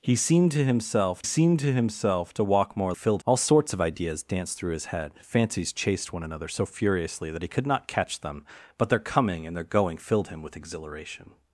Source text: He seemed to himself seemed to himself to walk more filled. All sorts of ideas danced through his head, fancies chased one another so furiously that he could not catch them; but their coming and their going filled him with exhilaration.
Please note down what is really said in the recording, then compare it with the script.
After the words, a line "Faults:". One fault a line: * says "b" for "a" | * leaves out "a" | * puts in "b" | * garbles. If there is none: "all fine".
He seemed to himself seemed to himself to walk more filled. All sorts of ideas danced through his head, fancies chased one another so furiously that he could not catch them; but their coming and their going filled him with exhilaration.
Faults:
all fine